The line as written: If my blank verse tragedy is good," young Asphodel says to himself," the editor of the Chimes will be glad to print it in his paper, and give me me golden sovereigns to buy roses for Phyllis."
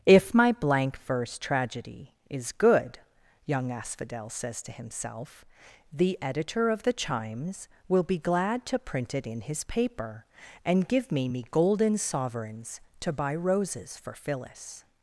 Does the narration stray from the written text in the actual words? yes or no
no